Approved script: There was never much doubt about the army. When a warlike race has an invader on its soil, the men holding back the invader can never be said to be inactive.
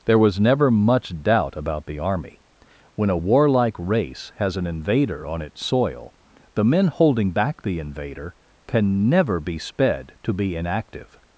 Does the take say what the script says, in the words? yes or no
no